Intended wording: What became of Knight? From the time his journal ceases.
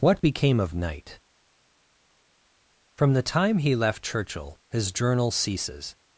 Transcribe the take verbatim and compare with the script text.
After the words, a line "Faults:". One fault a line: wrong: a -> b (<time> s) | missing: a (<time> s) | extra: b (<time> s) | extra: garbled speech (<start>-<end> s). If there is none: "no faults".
What became of Knight? From the time he left Churchill, his journal ceases.
Faults:
extra: he left Churchill (3.6 s)